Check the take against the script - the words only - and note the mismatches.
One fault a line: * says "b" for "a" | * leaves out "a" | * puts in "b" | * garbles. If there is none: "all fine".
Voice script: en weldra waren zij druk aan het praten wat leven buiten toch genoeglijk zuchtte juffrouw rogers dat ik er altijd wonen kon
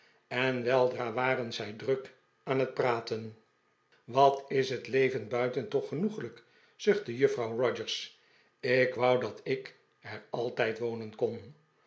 * puts in "is het"
* puts in "ik wou"